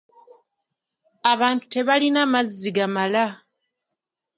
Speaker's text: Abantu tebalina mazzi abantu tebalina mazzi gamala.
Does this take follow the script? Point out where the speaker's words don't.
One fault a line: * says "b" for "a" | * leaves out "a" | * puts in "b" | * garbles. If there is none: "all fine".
* leaves out "abantu tebalina mazzi"